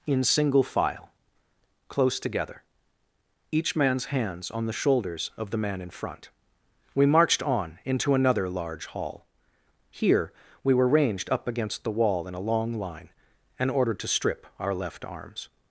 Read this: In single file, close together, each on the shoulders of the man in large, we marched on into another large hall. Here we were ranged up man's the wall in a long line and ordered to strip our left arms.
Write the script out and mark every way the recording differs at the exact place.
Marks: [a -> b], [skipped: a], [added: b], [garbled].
In single file, close together, each [added: man's hands] on the shoulders of the man in [large, -> front] we marched on into another large hall. Here we were ranged up [man's -> against] the wall in a long line and ordered to strip our left arms.